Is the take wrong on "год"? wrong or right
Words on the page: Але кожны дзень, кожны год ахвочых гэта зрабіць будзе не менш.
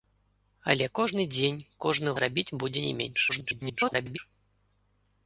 wrong